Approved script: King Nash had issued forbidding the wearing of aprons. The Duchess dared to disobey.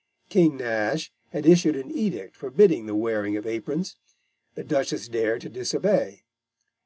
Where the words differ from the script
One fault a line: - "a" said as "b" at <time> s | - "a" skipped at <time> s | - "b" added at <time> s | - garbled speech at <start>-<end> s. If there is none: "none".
- "an edict" added at 1.8 s